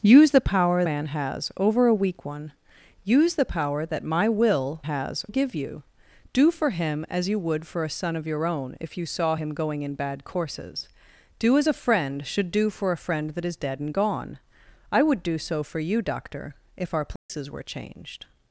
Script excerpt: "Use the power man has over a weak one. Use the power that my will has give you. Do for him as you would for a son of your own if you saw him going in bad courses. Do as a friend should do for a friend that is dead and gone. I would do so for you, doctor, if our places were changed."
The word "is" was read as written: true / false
true